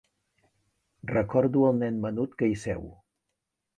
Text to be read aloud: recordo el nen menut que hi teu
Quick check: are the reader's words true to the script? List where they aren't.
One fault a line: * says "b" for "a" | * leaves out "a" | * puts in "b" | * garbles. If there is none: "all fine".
* says "seu" for "teu"